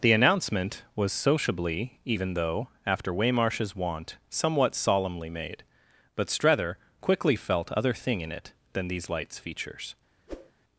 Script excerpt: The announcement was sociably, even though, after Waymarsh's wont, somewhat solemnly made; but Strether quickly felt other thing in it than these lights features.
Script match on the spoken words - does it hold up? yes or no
yes